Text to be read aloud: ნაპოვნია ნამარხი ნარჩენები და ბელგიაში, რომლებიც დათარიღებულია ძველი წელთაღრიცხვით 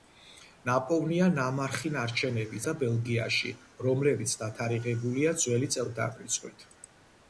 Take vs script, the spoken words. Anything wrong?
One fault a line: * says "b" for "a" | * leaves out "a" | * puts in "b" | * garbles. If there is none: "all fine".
all fine